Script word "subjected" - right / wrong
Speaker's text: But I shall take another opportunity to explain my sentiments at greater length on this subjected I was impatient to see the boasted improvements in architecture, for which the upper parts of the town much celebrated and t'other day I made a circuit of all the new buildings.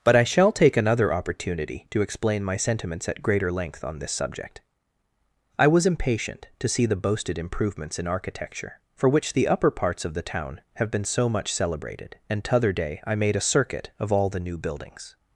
wrong